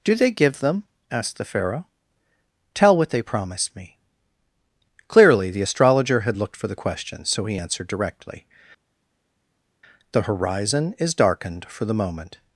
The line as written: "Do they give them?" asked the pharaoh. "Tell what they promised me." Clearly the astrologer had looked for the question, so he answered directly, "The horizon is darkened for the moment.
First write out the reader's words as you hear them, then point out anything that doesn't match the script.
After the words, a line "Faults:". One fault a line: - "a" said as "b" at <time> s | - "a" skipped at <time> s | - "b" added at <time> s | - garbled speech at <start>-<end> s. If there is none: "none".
"Do they give them?" asked the pharaoh. "Tell what they promised me." Clearly the astrologer had looked for the question, so he answered directly, "The horizon is darkened for the moment.
Faults:
none